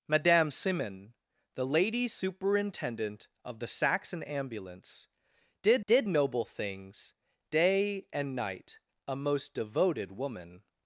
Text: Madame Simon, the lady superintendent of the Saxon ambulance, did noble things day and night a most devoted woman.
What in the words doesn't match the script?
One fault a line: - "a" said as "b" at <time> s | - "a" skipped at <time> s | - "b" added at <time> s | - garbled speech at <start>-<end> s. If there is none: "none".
- "did" added at 5.9 s